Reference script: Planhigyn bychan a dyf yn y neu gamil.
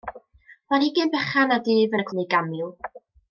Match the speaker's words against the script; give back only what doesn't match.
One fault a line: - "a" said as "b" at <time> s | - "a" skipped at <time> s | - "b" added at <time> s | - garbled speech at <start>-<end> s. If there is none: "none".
none